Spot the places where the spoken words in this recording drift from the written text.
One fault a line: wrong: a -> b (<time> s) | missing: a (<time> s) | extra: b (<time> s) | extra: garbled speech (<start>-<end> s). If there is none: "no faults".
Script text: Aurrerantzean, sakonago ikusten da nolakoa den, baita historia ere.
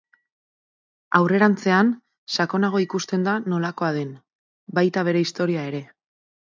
extra: bere (5.1 s)